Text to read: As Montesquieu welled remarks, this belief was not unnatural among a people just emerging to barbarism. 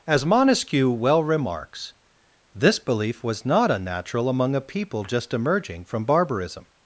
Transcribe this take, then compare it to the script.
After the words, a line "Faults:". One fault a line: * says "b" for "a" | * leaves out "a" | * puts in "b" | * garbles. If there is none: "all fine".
As Montesquieu well remarks, this belief was not unnatural among a people just emerging from barbarism.
Faults:
* says "well" for "welled"
* says "from" for "to"